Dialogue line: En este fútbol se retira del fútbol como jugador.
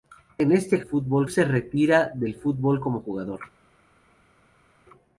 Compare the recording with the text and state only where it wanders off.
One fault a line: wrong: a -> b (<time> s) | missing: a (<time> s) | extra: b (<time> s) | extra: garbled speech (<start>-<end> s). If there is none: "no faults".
no faults